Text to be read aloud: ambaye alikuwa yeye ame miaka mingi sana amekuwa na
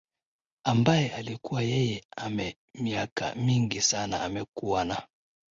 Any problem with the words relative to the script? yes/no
no